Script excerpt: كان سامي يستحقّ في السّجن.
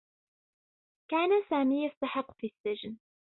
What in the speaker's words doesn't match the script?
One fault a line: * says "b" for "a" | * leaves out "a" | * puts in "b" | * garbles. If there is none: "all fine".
all fine